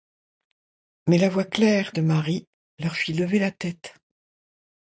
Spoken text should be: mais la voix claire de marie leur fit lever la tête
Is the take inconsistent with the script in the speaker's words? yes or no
no